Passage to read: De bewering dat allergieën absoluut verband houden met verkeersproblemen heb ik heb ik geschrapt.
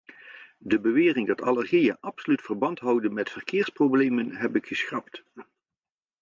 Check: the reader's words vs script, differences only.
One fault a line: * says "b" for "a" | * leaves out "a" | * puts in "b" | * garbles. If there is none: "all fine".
* leaves out "heb ik"